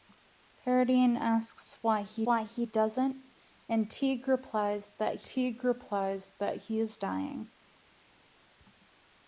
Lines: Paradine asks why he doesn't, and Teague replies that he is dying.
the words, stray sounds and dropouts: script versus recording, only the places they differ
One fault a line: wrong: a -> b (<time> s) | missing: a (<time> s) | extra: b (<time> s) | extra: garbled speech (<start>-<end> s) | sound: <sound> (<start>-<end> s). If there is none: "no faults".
extra: why he (2.2 s)
extra: Teague replies that (5.2 s)